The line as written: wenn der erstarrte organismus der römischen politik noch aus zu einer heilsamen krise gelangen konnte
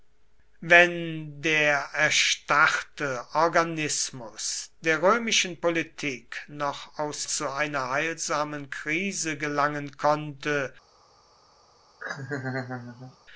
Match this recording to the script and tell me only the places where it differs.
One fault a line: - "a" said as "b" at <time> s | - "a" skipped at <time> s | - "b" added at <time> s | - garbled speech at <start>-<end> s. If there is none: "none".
none